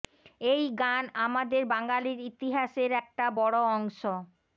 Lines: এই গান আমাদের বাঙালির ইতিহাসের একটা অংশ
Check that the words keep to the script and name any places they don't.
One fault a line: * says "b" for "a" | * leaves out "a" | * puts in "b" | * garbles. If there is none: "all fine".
* puts in "বড়"